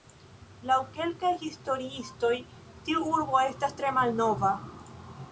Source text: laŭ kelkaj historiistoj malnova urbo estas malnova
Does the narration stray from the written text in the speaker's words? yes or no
yes